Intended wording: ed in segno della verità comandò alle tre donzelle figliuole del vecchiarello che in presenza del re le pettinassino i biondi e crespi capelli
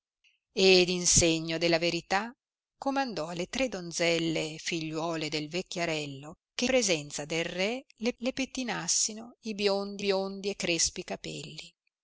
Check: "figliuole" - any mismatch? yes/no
no